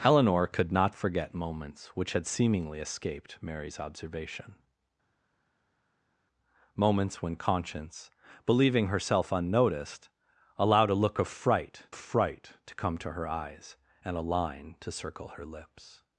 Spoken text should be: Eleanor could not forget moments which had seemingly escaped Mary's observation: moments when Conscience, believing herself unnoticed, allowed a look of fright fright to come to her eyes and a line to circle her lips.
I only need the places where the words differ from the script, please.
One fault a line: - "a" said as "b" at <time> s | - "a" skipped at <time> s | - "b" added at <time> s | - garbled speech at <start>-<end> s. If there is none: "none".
none